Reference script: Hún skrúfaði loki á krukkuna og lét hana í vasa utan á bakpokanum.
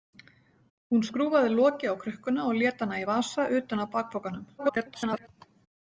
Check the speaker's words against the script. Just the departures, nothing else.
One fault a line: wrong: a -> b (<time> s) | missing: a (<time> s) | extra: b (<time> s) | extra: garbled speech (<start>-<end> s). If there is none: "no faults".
extra: garbled speech (4.6-5.3 s)